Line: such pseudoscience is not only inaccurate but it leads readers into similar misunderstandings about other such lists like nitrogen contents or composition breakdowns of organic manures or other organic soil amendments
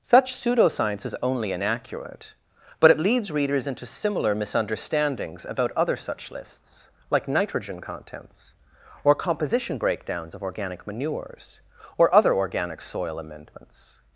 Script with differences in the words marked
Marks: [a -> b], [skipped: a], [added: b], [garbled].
such pseudoscience is [skipped: not] only inaccurate but it leads readers into similar misunderstandings about other such lists like nitrogen contents or composition breakdowns of organic manures or other organic soil amendments